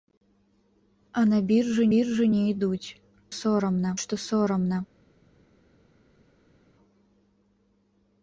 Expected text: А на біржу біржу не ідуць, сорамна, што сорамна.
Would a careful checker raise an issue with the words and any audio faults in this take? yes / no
no